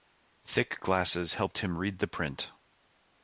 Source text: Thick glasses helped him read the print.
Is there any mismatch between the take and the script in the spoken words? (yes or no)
no